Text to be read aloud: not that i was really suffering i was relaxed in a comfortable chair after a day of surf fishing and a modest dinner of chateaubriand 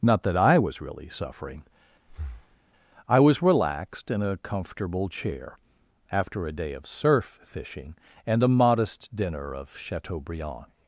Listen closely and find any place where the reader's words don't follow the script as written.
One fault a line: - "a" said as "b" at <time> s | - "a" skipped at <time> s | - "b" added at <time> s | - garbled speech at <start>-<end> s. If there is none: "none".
none